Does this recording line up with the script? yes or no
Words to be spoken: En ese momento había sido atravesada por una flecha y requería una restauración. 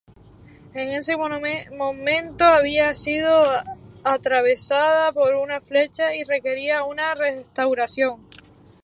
yes